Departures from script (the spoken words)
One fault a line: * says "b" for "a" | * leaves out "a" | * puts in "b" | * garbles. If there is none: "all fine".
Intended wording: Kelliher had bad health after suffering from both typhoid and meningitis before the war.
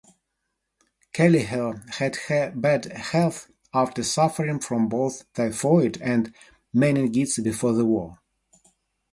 all fine